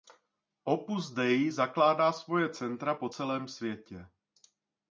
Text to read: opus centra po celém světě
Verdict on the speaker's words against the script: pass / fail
fail